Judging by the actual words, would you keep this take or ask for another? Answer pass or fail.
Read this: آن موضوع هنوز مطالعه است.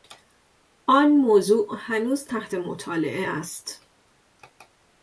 fail